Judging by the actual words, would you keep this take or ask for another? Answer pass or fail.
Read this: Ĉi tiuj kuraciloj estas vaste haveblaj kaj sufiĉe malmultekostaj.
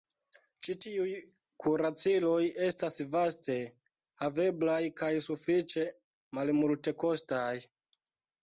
pass